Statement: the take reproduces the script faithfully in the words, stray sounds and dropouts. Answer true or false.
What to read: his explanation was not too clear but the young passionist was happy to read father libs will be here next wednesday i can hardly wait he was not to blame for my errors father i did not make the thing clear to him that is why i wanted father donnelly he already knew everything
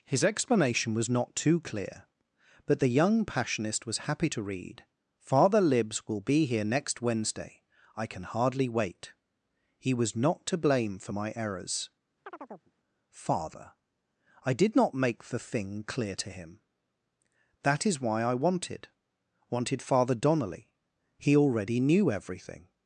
false